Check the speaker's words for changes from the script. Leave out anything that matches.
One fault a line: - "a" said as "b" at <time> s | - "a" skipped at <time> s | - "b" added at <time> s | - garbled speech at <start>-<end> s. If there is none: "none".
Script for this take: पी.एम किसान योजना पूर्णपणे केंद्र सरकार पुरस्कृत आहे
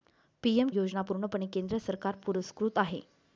- "किसान" skipped at 0.7 s